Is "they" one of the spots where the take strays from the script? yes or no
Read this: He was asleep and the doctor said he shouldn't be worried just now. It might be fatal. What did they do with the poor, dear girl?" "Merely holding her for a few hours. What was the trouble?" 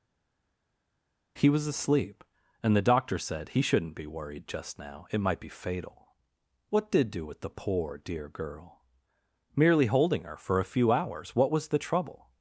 yes